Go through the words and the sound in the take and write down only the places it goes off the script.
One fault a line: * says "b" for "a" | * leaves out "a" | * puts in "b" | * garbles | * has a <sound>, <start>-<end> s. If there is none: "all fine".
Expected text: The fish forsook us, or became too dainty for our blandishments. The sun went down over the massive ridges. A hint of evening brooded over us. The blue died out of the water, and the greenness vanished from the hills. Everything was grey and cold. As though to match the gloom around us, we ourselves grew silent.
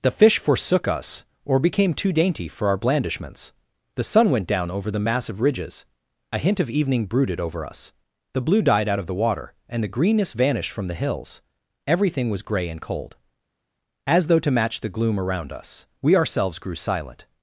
all fine